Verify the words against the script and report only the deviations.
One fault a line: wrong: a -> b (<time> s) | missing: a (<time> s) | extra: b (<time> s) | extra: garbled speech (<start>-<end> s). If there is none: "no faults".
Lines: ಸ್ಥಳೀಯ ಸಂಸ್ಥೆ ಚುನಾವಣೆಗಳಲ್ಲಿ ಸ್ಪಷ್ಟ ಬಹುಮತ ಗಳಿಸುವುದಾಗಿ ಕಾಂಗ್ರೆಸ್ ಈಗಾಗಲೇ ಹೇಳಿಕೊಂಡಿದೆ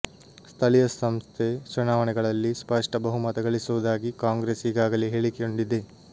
no faults